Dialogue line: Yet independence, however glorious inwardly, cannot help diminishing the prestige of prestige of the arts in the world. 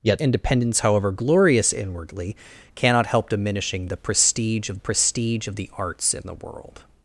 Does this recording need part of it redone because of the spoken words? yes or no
no